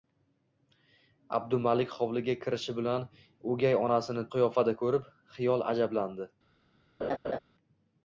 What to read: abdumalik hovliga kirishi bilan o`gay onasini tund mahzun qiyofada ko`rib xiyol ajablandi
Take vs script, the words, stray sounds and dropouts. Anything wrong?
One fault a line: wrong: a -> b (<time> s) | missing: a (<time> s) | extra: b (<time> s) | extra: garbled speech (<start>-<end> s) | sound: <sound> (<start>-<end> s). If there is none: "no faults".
missing: tund mahzun (4.3 s)
sound: laugh (7.0-7.4 s)